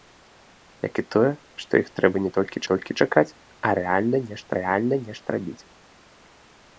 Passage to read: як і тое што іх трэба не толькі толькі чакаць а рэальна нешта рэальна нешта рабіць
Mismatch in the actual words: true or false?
false